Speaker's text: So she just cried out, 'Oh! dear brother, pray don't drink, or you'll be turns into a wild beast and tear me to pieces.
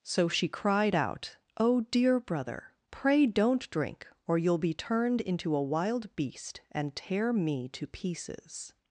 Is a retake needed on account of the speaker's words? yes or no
yes